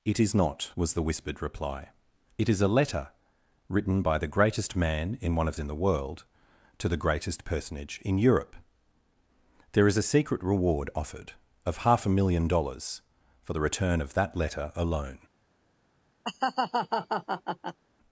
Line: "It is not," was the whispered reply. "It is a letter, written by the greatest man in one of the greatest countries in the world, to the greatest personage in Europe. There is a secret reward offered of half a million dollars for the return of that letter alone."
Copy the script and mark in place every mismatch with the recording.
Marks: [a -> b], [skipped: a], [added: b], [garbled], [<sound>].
"It is not," was the whispered reply. "It is a letter, written by the greatest man in one of [skipped: the greatest countries] in the world, to the greatest personage in Europe. There is a secret reward offered of half a million dollars for the return of that letter alone." [laugh]